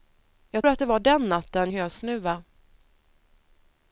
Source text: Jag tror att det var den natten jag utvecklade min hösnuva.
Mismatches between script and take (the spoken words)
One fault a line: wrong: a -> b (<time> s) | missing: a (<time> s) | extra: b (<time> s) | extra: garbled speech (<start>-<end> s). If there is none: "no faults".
missing: tror (0.7 s)
missing: jag utvecklade min (1.7 s)